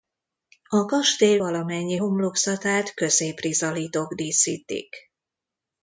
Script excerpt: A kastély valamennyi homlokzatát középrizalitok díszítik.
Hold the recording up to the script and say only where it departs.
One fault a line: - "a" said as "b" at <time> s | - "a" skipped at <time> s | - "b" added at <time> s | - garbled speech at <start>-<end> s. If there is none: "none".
none